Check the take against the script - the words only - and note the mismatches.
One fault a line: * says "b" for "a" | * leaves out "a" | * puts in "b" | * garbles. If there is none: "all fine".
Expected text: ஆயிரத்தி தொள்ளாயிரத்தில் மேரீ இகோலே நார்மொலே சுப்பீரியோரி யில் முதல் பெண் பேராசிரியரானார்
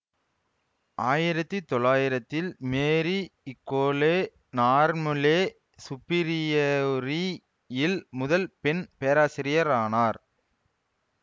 all fine